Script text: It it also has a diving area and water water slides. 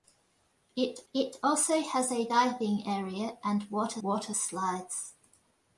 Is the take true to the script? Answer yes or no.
yes